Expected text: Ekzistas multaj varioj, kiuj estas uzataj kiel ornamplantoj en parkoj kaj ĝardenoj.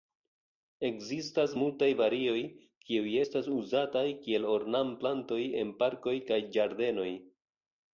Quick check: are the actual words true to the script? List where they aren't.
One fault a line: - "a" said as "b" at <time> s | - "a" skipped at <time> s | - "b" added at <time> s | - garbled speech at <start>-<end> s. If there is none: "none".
none